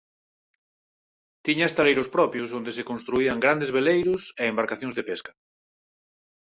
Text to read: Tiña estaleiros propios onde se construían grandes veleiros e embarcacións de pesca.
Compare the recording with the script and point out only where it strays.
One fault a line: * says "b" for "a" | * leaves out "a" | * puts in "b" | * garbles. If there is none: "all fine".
all fine